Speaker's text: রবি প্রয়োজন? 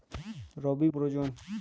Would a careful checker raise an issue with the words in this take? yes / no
no